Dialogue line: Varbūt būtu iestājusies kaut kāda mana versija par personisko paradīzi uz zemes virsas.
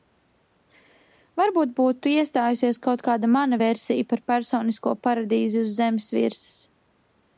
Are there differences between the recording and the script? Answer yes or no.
no